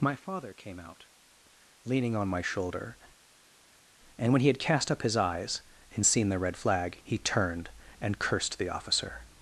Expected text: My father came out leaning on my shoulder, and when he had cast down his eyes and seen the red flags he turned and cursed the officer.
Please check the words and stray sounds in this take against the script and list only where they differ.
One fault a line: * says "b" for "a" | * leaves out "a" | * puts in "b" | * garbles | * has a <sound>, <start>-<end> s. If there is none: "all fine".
* says "up" for "down"
* says "flag" for "flags"